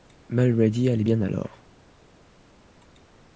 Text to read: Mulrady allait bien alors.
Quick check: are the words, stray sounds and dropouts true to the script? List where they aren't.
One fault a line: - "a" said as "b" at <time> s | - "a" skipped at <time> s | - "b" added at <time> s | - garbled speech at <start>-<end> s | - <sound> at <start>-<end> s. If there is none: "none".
none